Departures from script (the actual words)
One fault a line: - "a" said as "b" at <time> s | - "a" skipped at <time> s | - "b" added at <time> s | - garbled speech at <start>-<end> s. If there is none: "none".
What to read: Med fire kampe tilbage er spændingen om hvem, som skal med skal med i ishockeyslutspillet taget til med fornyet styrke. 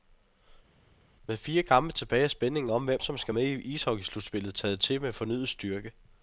- "skal med" skipped at 3.4 s